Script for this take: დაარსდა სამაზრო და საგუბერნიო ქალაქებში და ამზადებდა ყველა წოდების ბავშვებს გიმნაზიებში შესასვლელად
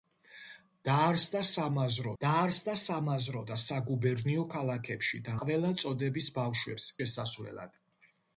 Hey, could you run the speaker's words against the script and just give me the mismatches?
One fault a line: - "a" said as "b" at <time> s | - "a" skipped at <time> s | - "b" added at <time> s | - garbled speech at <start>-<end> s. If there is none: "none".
- "დაარსდა სამაზრო" added at 2.2 s
- "ამზადებდა" skipped at 5.4 s
- "გიმნაზიებში" skipped at 6.9 s